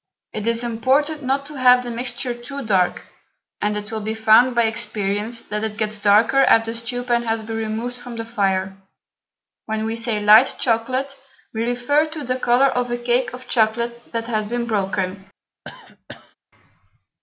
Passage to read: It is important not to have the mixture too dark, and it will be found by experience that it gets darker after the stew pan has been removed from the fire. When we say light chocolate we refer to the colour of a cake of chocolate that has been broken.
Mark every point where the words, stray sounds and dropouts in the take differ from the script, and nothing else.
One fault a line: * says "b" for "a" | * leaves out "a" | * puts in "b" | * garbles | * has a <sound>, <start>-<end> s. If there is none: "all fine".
* has a cough, 15.7-16.4 s